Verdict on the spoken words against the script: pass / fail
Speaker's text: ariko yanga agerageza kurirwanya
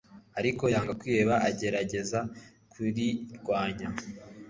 fail